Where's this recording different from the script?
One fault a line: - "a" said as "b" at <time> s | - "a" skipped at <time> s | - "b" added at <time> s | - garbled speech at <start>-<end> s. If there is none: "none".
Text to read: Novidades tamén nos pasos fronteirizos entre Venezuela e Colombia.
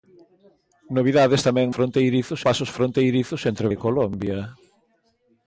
- "nos" said as "fronteirizos" at 1.7 s
- "Venezuela" skipped at 3.7 s